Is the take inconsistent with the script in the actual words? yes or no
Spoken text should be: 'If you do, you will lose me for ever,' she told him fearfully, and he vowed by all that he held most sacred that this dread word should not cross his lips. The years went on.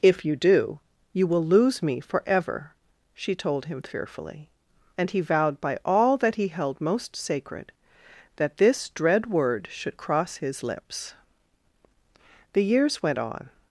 yes